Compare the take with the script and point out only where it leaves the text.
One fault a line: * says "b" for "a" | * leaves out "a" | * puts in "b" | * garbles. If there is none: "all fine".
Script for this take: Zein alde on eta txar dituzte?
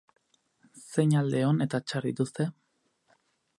all fine